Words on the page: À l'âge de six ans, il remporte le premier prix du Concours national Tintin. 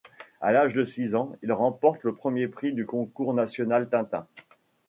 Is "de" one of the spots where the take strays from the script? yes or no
no